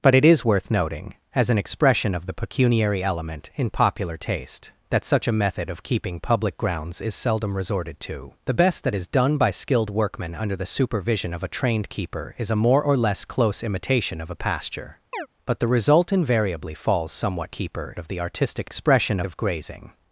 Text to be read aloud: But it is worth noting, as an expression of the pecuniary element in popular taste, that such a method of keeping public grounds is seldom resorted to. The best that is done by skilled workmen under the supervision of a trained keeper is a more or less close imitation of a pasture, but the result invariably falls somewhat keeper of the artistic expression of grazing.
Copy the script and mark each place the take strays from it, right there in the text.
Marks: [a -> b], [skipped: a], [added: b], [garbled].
But it is worth noting, as an expression of the pecuniary element in popular taste, that such a method of keeping public grounds is seldom resorted to. The best that is done by skilled workmen under the supervision of a trained keeper is a more or less close imitation of a pasture, but the result invariably falls somewhat keeper of the artistic expression of grazing.